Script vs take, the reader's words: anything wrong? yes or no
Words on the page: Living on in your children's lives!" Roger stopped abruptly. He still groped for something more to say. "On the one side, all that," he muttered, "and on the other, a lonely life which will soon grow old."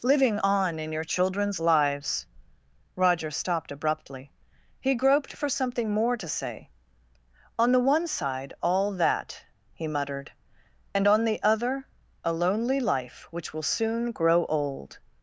yes